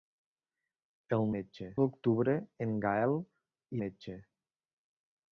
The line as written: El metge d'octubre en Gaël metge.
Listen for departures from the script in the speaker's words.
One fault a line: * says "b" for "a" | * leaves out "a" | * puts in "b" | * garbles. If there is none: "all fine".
all fine